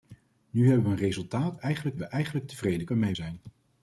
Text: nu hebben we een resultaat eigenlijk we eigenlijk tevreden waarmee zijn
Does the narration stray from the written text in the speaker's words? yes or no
no